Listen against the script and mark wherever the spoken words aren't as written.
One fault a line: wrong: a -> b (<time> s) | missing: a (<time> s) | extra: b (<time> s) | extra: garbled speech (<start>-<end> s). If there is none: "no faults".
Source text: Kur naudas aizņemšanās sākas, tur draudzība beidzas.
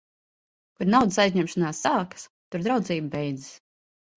no faults